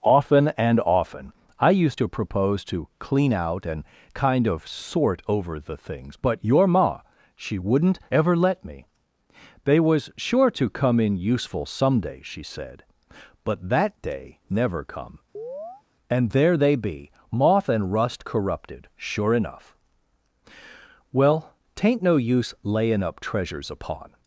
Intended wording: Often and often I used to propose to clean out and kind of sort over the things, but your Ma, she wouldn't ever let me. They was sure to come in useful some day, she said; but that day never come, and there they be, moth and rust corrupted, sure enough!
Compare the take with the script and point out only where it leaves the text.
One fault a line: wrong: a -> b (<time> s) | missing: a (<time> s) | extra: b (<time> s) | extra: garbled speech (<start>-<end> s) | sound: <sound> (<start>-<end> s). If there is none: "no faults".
sound: chirp (15.3-15.8 s)
extra: Well tain't no use layin up treasures upon (21.1 s)